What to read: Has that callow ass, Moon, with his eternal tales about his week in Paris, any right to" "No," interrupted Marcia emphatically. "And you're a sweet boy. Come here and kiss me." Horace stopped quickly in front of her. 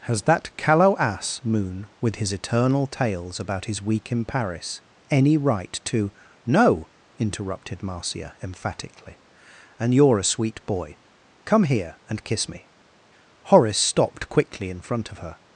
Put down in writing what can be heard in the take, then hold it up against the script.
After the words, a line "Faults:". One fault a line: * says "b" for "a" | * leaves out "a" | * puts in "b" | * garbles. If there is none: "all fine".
Has that callow ass, Moon, with his eternal tales about his week in Paris, any right to" "No," interrupted Marcia emphatically. "And you're a sweet boy. Come here and kiss me." Horace stopped quickly in front of her.
Faults:
all fine